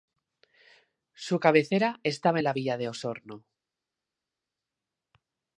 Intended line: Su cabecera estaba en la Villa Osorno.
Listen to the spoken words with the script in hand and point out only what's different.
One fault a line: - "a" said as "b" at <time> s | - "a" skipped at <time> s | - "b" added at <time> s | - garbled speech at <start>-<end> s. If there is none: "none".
- "de" added at 2.8 s